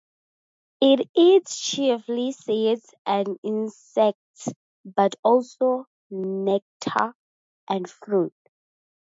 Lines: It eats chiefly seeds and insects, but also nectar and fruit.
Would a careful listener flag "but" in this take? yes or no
no